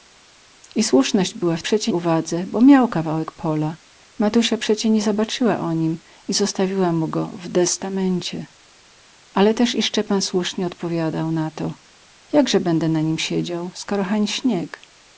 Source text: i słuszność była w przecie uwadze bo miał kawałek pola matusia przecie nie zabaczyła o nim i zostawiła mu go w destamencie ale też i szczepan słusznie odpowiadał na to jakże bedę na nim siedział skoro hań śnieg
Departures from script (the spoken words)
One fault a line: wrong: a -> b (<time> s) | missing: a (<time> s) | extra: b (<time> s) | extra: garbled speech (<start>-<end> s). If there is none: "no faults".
no faults